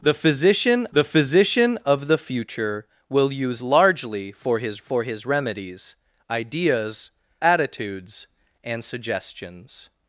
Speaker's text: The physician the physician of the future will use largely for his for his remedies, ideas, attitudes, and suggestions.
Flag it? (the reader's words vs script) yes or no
no